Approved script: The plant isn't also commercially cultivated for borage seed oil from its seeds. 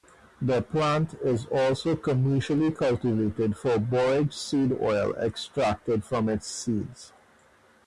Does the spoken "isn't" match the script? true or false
false